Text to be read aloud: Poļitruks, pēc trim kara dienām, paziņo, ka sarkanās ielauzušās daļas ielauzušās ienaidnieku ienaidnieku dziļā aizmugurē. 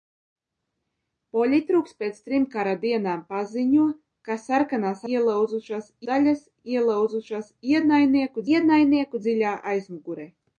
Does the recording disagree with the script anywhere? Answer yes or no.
no